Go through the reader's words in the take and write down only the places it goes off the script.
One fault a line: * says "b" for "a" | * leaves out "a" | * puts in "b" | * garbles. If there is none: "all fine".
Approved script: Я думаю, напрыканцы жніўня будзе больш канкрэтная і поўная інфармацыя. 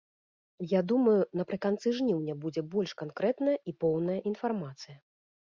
all fine